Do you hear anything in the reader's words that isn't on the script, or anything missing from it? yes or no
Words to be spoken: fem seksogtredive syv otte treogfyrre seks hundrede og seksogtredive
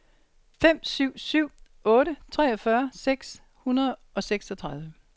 yes